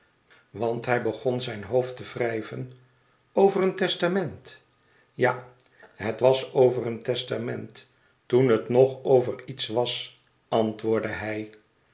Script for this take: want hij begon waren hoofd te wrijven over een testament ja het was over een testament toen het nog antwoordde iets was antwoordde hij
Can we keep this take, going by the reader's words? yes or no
no